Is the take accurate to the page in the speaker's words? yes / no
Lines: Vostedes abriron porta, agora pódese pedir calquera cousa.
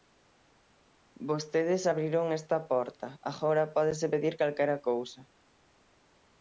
no